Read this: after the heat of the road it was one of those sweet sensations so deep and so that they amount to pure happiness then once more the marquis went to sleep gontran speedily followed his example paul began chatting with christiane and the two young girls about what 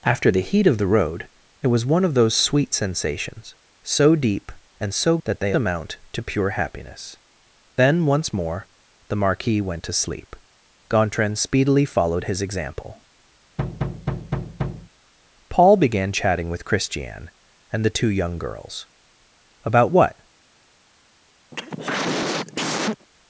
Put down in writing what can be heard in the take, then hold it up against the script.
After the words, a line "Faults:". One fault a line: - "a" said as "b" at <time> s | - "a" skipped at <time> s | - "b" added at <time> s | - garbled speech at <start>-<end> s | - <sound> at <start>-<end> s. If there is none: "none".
after the heat of the road it was one of those sweet sensations so deep and so that they amount to pure happiness then once more the marquis went to sleep gontran speedily followed his example paul began chatting with christiane and the two young girls about what
Faults:
- thud at 13.6-14.9 s
- cough at 21.5-23.1 s